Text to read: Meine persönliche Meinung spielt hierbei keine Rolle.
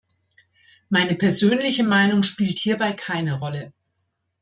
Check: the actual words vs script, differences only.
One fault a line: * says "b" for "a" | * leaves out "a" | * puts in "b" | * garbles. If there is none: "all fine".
all fine